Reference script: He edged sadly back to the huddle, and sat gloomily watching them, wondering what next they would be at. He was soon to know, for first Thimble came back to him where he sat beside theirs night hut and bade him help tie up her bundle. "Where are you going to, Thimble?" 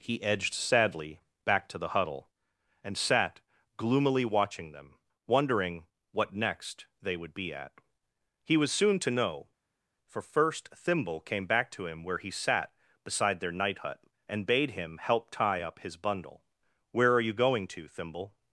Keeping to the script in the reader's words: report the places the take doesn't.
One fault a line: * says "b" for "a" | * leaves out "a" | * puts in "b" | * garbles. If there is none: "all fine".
* says "their" for "theirs"
* says "his" for "her"